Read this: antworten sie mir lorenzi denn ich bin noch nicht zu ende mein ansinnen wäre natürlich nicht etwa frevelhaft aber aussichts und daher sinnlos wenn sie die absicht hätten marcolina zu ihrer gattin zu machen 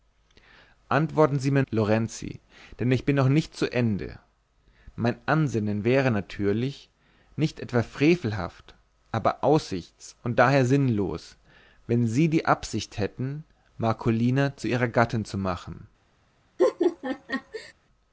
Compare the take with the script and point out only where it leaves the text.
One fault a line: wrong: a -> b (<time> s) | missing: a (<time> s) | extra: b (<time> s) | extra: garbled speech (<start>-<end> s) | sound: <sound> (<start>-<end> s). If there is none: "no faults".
sound: laugh (16.6-17.7 s)